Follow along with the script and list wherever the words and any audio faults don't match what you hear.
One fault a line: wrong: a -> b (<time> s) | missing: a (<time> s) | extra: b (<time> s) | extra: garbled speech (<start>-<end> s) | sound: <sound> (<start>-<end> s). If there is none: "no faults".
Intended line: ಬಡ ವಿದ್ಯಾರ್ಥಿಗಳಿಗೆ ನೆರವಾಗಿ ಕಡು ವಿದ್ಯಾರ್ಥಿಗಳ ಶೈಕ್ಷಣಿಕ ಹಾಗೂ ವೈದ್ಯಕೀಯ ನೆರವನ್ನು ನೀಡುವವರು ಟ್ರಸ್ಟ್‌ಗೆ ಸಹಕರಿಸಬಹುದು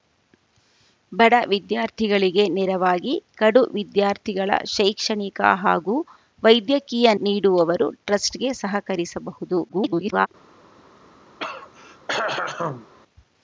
missing: ನೆರವನ್ನು (7.1 s)
extra: garbled speech (9.7-10.3 s)
sound: throat clearing (11.4-12.9 s)